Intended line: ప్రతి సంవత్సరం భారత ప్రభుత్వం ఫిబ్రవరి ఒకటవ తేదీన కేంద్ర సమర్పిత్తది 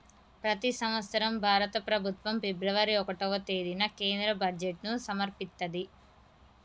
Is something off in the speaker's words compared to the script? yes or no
yes